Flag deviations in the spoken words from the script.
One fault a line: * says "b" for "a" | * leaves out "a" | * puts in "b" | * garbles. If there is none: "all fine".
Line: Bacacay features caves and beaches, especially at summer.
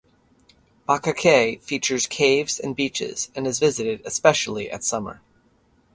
* puts in "and is visited"